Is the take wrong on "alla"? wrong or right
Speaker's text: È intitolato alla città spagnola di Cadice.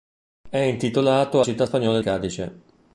wrong